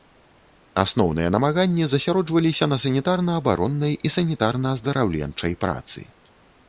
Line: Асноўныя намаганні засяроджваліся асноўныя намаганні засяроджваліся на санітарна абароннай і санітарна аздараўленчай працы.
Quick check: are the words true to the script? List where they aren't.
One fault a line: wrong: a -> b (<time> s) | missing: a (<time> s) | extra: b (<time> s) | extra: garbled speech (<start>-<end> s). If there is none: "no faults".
missing: асноўныя намаганні засяроджваліся (2.6 s)